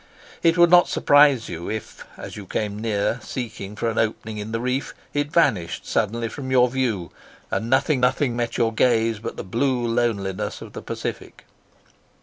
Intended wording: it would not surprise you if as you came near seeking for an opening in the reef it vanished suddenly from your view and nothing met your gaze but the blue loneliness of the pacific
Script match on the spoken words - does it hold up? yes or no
no